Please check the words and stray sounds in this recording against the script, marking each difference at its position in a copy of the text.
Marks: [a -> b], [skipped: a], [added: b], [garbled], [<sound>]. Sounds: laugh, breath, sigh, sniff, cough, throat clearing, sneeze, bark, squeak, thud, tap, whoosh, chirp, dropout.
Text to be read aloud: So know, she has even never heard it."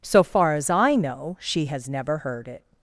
So [added: far as I] know, she has [skipped: even] never heard it."